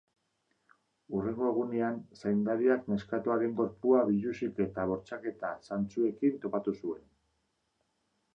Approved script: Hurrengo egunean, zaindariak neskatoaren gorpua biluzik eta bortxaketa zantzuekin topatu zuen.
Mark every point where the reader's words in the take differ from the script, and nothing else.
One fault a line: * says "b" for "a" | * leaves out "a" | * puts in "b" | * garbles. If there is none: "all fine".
all fine